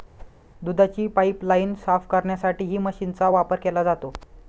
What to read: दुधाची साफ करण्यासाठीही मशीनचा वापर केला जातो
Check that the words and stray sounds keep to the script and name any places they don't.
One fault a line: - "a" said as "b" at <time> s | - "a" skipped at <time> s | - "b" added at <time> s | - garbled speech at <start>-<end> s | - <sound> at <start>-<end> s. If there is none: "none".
- whoosh at 0.2-0.4 s
- "पाइपलाइन" added at 1.1 s